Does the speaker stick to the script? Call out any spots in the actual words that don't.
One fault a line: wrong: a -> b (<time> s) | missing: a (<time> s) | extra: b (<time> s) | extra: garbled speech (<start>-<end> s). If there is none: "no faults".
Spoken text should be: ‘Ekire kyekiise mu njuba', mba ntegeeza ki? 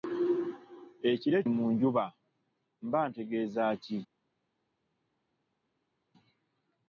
missing: kyekiise (1.4 s)